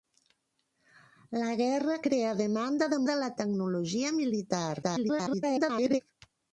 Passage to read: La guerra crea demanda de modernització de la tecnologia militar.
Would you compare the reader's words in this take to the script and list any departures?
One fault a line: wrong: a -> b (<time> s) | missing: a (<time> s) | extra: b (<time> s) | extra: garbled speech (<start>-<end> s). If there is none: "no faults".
missing: modernització (3.0 s)
extra: garbled speech (4.8-6.0 s)